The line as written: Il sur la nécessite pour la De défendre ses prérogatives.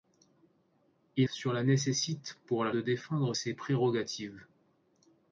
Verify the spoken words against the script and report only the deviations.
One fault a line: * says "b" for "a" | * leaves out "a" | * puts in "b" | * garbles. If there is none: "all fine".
all fine